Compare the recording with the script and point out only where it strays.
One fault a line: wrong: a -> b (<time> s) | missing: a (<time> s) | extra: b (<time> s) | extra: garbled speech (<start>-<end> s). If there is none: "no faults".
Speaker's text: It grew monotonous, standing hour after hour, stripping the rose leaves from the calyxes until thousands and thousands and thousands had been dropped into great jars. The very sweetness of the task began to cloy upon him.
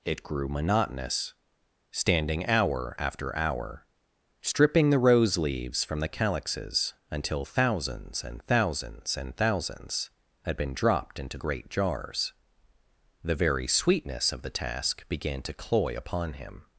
no faults